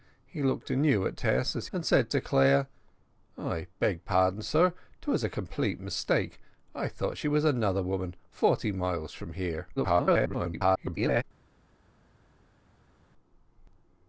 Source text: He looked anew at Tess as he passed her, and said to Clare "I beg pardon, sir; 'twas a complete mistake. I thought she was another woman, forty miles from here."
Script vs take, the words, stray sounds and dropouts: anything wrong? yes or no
yes